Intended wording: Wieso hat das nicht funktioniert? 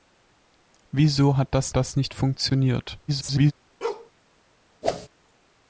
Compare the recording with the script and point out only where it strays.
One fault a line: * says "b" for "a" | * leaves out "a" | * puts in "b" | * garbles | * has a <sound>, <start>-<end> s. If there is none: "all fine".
* puts in "das"
* garbles
* has a bark, 3.8-4.1 s
* has a whoosh, 4.8-5.1 s